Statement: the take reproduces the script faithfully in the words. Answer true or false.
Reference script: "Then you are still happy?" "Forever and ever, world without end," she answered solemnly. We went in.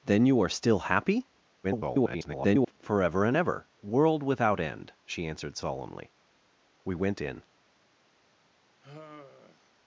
false